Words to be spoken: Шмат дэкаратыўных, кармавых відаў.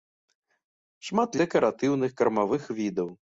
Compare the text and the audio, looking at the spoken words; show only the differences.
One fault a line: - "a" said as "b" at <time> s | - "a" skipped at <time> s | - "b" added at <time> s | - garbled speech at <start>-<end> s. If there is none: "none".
none